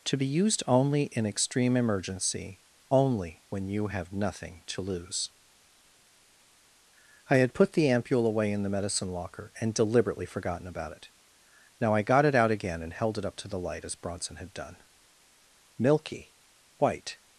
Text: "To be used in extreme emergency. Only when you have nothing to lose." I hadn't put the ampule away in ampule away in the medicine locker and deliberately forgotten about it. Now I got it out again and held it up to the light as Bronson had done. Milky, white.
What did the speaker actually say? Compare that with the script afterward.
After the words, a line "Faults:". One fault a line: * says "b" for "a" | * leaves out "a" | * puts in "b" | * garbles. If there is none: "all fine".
"To be used only in extreme emergency. Only when you have nothing to lose." I had put the ampule away in the medicine locker and deliberately forgotten about it. Now I got it out again and held it up to the light as Bronson had done. Milky, white.
Faults:
* puts in "only"
* says "had" for "hadn't"
* leaves out "ampule away in"